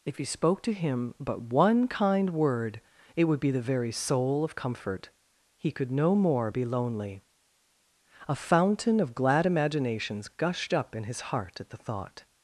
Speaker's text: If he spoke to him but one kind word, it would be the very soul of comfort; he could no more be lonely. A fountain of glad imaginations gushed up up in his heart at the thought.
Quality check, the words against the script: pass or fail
fail